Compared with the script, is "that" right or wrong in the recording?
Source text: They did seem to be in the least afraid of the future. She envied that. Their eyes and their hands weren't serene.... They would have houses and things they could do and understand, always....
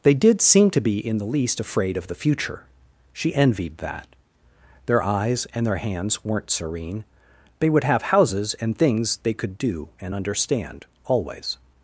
right